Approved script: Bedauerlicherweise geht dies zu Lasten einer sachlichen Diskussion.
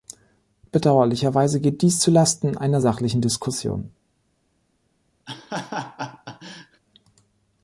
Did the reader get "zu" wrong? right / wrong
right